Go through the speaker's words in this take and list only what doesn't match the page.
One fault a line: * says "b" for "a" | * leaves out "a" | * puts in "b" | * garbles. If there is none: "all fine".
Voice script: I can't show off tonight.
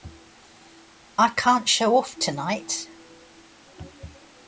all fine